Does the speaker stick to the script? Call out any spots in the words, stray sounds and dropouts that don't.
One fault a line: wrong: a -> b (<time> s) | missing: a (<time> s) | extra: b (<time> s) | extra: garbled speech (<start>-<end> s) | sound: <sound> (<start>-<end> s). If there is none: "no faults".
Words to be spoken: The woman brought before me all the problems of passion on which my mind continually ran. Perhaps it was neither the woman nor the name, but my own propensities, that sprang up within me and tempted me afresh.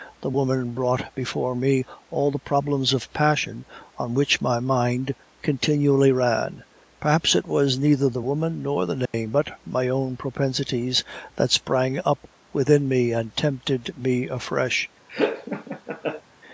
sound: dropout (9.1-9.1 s)
sound: laugh (15.1-16.2 s)